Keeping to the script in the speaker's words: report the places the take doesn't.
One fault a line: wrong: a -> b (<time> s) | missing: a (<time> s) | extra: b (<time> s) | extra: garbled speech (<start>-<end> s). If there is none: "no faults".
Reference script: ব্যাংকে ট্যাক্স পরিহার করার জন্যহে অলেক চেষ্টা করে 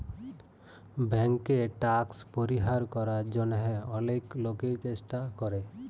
extra: লোকই (4.4 s)